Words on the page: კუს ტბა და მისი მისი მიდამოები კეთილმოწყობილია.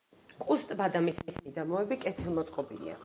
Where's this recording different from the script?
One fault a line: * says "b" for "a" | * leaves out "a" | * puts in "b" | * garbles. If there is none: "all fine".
all fine